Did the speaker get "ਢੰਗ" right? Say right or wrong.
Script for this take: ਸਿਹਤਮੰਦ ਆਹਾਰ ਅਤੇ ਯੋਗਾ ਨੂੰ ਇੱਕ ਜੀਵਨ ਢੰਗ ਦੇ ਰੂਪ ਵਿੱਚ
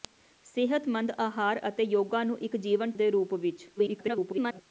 wrong